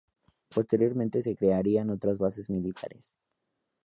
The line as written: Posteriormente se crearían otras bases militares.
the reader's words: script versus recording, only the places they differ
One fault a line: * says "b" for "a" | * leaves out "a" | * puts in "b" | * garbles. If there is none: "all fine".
all fine